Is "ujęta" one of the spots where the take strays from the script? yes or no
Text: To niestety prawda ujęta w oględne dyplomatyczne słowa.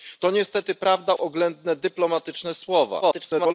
yes